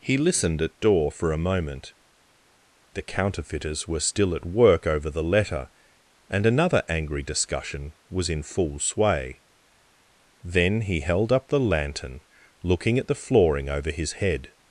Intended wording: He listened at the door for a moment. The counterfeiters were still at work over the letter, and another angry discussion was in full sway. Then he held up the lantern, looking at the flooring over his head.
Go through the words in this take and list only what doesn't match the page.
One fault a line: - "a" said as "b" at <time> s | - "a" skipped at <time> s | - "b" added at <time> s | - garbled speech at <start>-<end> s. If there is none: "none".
- "the" skipped at 0.8 s